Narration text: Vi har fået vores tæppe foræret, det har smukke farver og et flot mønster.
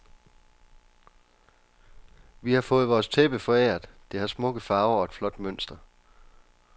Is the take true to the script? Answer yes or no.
yes